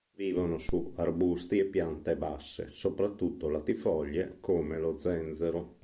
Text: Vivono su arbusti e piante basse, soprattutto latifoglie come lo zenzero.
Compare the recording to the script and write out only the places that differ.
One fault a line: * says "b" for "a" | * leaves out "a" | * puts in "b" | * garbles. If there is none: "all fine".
all fine